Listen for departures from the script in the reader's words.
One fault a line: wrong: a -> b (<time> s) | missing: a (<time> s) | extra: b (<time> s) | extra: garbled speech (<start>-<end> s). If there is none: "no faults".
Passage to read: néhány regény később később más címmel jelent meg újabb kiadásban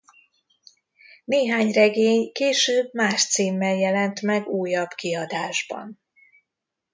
missing: később (2.9 s)